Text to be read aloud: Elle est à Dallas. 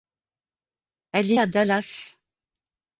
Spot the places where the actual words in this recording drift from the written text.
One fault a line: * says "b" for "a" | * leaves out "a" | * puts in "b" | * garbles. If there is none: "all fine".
all fine